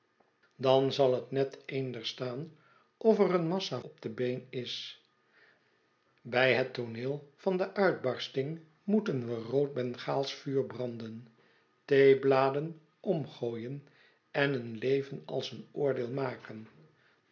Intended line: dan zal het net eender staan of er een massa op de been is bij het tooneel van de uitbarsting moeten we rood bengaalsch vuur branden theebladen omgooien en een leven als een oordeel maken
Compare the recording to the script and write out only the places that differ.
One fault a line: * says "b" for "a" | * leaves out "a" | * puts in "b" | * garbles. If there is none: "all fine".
all fine